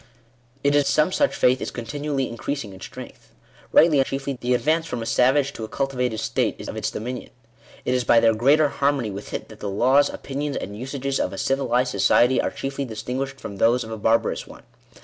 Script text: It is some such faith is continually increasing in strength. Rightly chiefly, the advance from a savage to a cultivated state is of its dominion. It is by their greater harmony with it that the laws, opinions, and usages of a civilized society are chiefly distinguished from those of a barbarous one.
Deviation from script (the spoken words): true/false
false